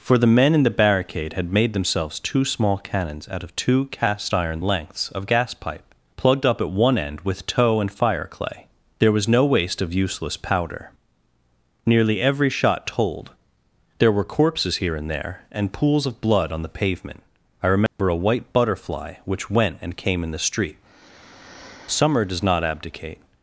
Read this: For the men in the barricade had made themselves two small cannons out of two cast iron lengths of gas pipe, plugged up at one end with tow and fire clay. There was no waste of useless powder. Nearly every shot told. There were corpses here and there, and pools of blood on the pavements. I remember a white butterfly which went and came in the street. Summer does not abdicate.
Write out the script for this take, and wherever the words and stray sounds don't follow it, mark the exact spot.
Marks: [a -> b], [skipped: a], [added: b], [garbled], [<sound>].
For the men in the barricade had made themselves two small cannons out of two cast iron lengths of gas pipe, plugged up at one end with tow and fire clay. There was no waste of useless powder. Nearly every shot told. There were corpses here and there, and pools of blood on the [pavements. -> pavement] I remember [dropout] a white butterfly which went and came in the street. Summer does not abdicate.